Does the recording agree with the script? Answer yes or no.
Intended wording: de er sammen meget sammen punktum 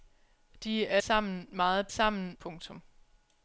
yes